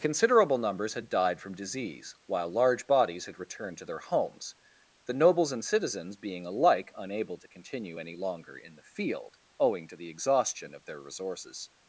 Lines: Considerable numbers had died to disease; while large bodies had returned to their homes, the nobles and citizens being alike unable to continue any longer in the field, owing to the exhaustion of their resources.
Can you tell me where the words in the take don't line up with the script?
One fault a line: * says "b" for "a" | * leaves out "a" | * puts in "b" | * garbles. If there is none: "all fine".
* says "from" for "to"